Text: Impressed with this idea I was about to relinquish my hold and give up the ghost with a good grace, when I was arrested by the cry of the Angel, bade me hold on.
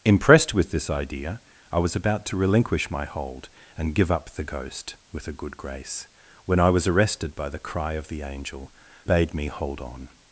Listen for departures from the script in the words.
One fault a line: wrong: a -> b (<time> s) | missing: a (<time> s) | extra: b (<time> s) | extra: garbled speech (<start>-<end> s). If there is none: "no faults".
no faults